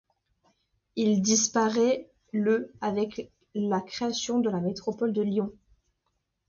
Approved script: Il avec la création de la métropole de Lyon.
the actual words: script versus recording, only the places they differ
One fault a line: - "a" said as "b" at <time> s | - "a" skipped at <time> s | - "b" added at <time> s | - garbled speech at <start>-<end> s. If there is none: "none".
- "disparaît le" added at 1.2 s